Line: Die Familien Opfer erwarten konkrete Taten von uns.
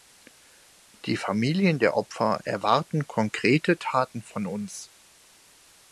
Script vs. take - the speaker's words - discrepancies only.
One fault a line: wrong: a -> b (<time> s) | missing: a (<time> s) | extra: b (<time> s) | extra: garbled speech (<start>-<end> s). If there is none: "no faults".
extra: der (1.8 s)